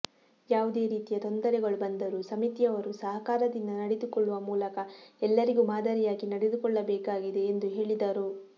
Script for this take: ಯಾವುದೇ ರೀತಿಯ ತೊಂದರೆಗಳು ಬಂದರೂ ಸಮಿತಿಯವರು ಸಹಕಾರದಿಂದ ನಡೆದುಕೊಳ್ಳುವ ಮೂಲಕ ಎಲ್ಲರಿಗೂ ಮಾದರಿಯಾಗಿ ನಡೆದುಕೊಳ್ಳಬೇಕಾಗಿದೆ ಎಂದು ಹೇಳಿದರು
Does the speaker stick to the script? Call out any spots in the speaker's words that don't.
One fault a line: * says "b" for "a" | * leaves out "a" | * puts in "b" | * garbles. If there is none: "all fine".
all fine